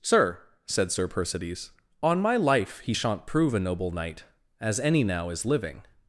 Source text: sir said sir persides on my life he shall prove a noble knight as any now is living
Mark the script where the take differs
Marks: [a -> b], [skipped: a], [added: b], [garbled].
sir said sir persides on my life he [shall -> shan't] prove a noble knight as any now is living